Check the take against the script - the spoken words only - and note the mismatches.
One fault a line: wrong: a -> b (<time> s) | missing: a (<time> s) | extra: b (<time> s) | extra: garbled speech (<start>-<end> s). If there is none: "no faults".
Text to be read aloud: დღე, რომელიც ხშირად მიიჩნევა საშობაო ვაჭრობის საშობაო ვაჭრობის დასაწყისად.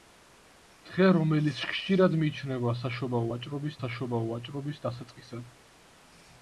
no faults